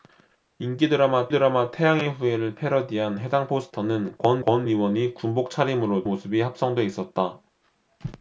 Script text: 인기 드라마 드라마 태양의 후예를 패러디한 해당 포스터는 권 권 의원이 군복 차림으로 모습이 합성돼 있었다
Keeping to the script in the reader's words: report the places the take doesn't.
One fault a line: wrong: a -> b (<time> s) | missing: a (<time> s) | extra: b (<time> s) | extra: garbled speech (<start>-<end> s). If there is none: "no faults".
no faults